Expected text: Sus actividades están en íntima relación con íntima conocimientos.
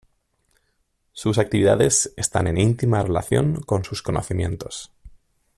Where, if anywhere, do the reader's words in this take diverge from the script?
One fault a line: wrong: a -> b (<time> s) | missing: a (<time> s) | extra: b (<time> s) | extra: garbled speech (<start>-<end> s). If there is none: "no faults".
wrong: íntima -> sus (3.8 s)